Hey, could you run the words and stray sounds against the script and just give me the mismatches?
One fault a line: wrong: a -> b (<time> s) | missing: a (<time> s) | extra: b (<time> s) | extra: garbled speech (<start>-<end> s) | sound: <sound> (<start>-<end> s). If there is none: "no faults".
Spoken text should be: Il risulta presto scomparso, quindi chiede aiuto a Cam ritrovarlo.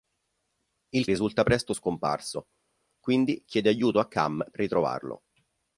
no faults